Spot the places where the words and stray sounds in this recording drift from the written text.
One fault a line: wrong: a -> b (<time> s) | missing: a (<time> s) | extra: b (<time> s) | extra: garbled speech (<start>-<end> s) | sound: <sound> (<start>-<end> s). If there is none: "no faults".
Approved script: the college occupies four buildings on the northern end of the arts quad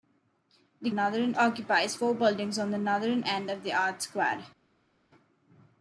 wrong: college -> northern (0.9 s)